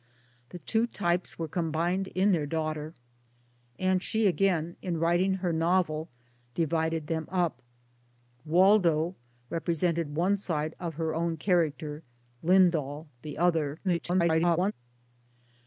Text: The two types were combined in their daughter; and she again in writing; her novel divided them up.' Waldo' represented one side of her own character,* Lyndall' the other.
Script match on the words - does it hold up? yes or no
no